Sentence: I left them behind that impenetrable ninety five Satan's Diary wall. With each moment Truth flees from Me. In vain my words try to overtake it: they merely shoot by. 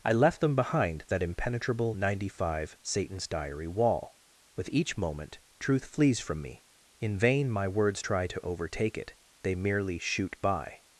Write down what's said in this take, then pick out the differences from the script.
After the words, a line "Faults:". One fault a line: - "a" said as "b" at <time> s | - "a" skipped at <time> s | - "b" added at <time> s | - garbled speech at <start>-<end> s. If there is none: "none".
I left them behind that impenetrable ninety five Satan's Diary wall. With each moment Truth flees from Me. In vain my words try to overtake it: they merely shoot by.
Faults:
none